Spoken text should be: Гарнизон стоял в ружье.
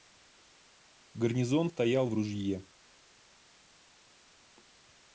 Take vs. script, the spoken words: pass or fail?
pass